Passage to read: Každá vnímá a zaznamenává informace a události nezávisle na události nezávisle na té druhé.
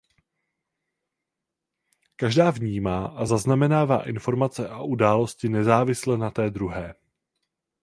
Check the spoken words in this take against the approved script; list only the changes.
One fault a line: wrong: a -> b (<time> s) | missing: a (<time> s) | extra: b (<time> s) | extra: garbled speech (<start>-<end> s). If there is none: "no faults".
missing: události nezávisle na (6.3 s)